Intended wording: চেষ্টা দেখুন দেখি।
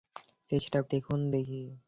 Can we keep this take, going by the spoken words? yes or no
yes